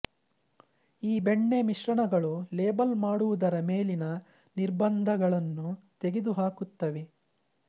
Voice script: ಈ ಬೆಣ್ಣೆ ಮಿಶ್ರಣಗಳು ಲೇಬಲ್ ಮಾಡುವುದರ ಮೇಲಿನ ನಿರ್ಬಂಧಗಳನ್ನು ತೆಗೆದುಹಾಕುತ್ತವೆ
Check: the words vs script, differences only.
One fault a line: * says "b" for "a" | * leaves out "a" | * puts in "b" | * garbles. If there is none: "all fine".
all fine